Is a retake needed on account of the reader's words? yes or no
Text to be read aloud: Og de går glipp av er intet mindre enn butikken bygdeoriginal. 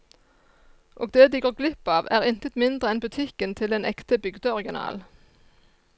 yes